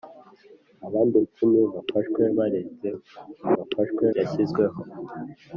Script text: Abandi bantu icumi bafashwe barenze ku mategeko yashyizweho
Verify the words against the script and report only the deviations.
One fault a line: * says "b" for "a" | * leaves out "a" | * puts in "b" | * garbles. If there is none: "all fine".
* leaves out "bantu"
* says "bafashwe" for "mategeko"